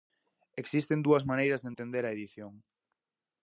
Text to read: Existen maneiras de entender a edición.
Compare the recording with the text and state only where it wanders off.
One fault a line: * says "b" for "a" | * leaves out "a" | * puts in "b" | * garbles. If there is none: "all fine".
* puts in "dúas"